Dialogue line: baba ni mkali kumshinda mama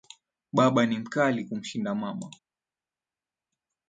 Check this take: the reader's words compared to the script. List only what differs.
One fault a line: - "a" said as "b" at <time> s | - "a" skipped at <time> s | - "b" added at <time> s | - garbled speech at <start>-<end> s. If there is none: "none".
none